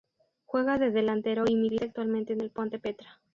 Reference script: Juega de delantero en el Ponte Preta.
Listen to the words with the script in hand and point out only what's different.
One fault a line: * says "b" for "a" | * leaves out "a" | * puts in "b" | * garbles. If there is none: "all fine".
* puts in "y milita actualmente"